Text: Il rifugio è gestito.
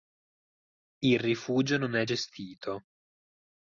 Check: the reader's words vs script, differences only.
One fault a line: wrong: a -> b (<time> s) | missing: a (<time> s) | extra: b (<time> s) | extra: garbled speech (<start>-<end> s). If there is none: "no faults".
extra: non (1.8 s)